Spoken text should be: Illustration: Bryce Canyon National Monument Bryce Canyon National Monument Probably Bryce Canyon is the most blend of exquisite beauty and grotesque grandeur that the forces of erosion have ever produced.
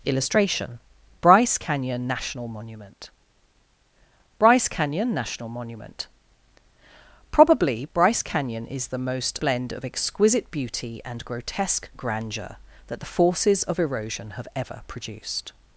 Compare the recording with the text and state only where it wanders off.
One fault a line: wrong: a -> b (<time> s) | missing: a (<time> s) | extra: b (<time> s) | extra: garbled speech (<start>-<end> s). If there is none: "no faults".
no faults